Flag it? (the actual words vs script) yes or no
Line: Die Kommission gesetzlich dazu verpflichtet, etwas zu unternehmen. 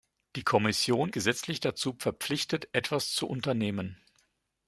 no